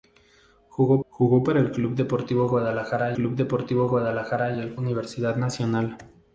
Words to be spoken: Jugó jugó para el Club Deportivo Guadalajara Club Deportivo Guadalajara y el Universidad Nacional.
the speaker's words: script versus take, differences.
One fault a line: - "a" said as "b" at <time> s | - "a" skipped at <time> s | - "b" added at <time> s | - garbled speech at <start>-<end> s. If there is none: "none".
none